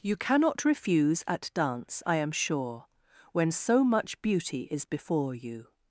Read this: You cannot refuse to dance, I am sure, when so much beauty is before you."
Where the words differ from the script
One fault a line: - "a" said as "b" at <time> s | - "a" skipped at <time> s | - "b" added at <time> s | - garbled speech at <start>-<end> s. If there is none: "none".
- "to" said as "at" at 1.3 s